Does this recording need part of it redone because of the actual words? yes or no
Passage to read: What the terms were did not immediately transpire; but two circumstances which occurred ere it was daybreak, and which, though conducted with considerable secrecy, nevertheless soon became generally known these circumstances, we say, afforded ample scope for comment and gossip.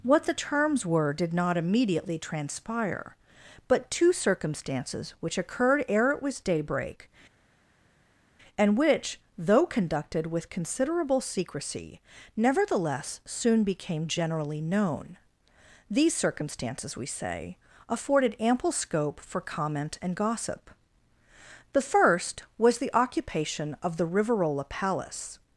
yes